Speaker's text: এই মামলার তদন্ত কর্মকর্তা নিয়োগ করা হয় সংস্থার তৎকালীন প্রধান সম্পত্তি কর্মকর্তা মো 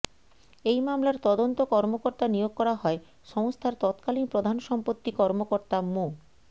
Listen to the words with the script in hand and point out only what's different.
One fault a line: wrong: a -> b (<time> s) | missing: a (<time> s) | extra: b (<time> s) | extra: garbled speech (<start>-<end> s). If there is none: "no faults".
no faults